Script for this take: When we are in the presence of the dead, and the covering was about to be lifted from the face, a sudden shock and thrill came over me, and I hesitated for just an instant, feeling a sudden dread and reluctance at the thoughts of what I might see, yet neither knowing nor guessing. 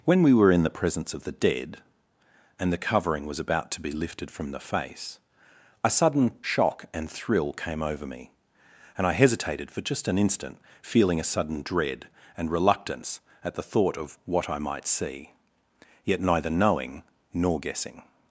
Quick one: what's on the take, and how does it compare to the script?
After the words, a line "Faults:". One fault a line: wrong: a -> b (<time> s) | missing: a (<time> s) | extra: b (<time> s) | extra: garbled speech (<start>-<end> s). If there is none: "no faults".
When we were in the presence of the dead, and the covering was about to be lifted from the face, a sudden shock and thrill came over me, and I hesitated for just an instant, feeling a sudden dread and reluctance at the thought of what I might see, yet neither knowing nor guessing.
Faults:
wrong: are -> were (0.3 s)
wrong: thoughts -> thought (13.6 s)